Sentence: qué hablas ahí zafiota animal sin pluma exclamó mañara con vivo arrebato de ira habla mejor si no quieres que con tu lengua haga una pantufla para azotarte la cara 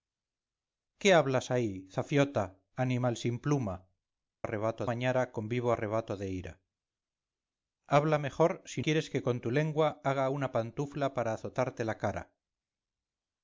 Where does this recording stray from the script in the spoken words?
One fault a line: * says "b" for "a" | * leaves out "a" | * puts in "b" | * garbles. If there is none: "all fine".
* says "arrebato" for "exclamó"
* leaves out "no"